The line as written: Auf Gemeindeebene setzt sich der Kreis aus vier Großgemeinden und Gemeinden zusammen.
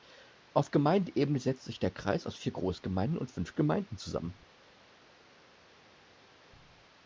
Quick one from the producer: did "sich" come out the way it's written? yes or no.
yes